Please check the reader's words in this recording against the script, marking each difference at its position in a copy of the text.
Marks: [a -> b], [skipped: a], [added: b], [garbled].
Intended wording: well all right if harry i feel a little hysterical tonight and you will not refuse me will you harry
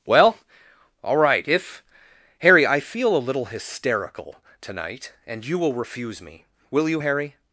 well all right if harry i feel a little hysterical tonight and you will [skipped: not] refuse me will you harry